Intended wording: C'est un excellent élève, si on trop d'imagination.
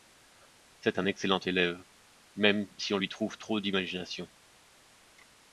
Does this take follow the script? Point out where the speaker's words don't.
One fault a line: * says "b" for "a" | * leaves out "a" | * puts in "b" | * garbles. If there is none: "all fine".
* puts in "même"
* puts in "lui trouve"